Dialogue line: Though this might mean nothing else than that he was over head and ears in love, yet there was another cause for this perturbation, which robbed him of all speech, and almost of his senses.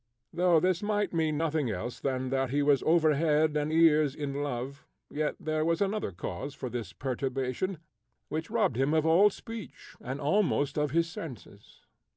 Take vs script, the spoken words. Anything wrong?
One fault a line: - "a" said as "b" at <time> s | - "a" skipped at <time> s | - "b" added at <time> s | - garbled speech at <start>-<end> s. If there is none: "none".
none